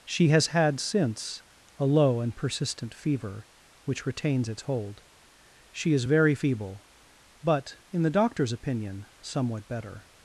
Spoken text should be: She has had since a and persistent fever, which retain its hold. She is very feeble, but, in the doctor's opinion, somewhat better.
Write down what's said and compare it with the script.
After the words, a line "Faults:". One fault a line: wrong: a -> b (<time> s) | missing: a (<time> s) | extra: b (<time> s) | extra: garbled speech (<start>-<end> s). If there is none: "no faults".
She has had since a low and persistent fever, which retains its hold. She is very feeble, but, in the doctor's opinion, somewhat better.
Faults:
extra: low (1.9 s)
wrong: retain -> retains (4.0 s)